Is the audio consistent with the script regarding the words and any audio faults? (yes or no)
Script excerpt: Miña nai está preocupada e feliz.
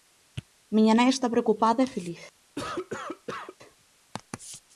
no